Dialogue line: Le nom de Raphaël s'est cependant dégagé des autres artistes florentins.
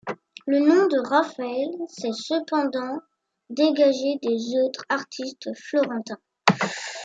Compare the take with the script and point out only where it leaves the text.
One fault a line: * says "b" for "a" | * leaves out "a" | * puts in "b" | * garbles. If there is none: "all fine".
all fine